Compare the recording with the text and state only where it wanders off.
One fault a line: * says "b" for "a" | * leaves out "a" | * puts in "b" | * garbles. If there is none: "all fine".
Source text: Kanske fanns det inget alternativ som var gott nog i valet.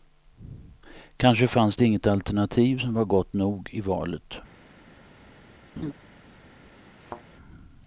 all fine